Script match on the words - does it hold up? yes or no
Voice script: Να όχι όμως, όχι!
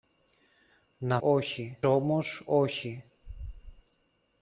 yes